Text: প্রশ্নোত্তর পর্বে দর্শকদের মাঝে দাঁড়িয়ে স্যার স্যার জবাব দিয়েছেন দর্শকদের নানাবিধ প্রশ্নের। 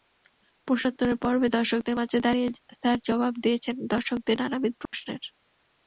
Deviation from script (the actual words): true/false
true